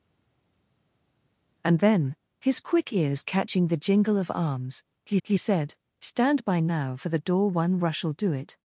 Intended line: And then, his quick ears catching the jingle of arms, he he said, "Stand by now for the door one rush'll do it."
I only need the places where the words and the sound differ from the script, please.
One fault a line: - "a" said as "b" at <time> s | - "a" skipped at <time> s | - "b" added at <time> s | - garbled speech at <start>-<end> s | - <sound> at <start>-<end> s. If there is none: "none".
none